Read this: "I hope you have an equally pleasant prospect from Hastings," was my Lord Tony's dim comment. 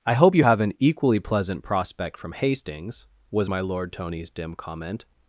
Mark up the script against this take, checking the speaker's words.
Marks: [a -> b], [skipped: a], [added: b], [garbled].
"I hope you have an equally pleasant prospect from Hastings," was my Lord Tony's dim comment.